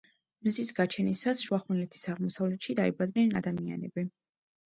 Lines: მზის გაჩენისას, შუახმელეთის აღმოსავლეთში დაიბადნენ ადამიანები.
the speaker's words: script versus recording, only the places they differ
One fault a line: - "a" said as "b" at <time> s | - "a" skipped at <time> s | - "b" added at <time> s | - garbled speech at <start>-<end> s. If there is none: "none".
none